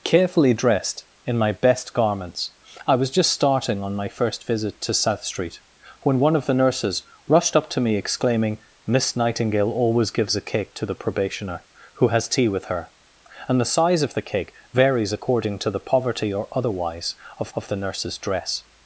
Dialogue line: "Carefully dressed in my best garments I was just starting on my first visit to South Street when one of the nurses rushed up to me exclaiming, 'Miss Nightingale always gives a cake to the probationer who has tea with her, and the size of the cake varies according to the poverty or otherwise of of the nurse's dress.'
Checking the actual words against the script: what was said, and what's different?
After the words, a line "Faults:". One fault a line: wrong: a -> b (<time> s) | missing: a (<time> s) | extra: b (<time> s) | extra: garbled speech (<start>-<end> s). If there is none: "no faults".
"Carefully dressed in my best garments I was just starting on my first visit to South Street when one of the nurses rushed up to me exclaiming, 'Miss Nightingale always gives a cake to the probationer who has tea with her, and the size of the cake varies according to the poverty or otherwise of of the nurse's dress.'
Faults:
no faults